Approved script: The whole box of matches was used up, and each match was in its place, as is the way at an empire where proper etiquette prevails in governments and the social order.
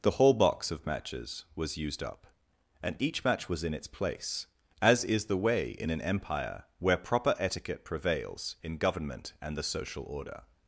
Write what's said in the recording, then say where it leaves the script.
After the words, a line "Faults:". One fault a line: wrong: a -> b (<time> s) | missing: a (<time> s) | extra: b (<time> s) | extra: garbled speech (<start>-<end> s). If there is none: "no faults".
The whole box of matches was used up, and each match was in its place, as is the way in an empire where proper etiquette prevails in government and the social order.
Faults:
wrong: at -> in (5.7 s)
wrong: governments -> government (8.8 s)